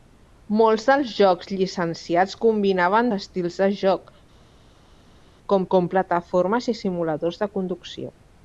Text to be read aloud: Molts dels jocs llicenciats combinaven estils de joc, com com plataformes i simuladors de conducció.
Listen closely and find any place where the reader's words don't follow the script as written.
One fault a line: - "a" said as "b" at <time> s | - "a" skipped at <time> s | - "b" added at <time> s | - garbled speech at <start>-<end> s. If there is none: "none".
none